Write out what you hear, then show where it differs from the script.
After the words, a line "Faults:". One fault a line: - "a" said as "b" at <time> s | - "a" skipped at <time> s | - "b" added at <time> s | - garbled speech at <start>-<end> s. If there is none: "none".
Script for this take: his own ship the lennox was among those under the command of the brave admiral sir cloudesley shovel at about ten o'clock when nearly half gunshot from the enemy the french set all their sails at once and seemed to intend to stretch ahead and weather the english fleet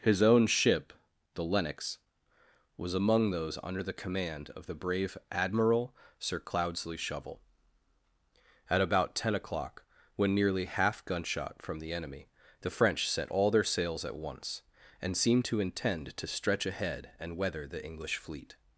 his own ship the lennox was among those under the command of the brave admiral sir cloudesley shovel at about ten o'clock when nearly half gunshot from the enemy the french set all their sails at once and seemed to intend to stretch ahead and weather the english fleet
Faults:
none